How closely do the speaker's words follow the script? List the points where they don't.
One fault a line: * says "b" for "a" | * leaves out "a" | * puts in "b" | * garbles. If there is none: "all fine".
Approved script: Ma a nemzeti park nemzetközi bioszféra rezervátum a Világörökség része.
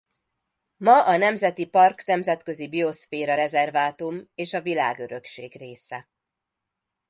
* puts in "és"